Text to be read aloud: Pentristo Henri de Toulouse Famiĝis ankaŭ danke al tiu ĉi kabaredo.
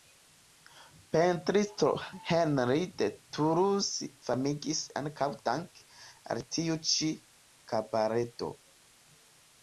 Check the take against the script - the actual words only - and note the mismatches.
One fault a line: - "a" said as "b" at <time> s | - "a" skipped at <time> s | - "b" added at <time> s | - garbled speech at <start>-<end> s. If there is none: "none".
none